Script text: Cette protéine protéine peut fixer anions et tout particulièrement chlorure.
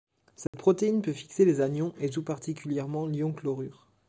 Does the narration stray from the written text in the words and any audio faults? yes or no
yes